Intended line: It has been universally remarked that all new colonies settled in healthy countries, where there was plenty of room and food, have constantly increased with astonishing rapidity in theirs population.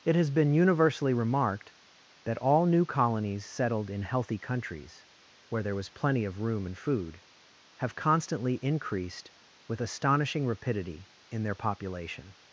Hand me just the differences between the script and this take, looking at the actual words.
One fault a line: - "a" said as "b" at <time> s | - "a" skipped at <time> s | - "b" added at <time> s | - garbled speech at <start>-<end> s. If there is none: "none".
- "theirs" said as "their" at 11.4 s